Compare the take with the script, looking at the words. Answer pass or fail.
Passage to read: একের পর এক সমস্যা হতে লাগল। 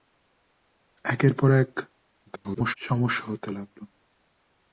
fail